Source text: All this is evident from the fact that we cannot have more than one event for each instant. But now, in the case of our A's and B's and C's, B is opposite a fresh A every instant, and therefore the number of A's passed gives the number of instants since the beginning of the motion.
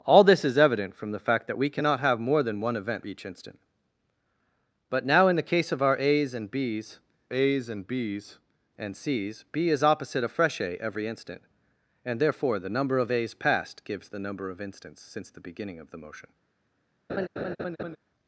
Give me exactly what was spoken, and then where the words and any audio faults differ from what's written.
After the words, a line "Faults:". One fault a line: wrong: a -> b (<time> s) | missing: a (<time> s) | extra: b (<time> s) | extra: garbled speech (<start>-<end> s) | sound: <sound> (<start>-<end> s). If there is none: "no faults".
All this is evident from the fact that we cannot have more than one event each instant. But now, in the case of our A's and B's A's and B's and C's, B is opposite a fresh A every instant, and therefore the number of A's passed gives the number of instants since the beginning of the motion.
Faults:
missing: for (3.1 s)
extra: A's and B's (7.3 s)
sound: laugh (17.1-18.0 s)